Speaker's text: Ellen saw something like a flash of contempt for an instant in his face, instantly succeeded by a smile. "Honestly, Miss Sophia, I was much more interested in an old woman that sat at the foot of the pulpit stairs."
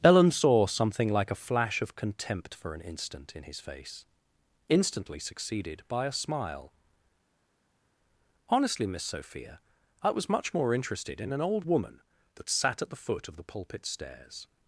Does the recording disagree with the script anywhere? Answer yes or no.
no